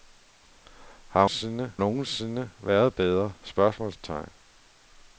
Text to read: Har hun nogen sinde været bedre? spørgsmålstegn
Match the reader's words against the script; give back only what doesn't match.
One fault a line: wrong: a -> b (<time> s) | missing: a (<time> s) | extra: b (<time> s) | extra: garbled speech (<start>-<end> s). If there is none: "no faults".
wrong: hun -> sinde (1.3 s)